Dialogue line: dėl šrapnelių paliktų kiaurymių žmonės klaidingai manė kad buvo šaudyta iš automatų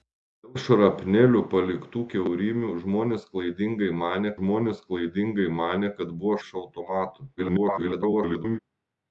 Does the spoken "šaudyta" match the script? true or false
false